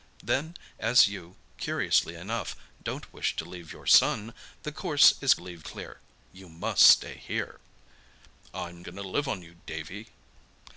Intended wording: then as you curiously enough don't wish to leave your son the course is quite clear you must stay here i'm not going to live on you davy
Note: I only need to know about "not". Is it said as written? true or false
false